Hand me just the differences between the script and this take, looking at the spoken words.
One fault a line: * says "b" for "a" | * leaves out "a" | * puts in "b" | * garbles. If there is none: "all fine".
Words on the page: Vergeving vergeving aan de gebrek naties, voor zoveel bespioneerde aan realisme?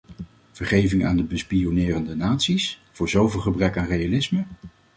* leaves out "vergeving"
* says "bespioneerde" for "gebrek"
* says "gebrek" for "bespioneerde"